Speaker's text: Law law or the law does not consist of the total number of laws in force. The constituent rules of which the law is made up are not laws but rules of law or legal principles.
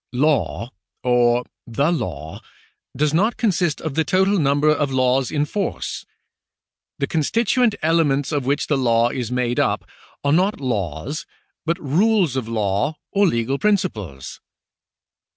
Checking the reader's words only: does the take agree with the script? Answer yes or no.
no